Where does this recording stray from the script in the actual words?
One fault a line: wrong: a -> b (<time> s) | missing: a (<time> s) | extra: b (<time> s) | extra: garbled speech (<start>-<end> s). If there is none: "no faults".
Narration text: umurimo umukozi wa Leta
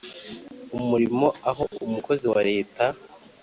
extra: aho (1.5 s)